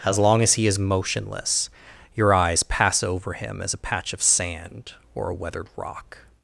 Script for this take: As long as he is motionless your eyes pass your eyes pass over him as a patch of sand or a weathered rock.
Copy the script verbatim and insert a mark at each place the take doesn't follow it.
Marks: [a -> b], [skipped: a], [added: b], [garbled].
As long as he is motionless your eyes pass [skipped: your eyes pass] over him as a patch of sand or a weathered rock.